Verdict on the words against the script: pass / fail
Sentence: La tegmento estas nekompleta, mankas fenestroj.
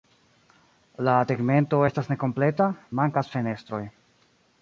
pass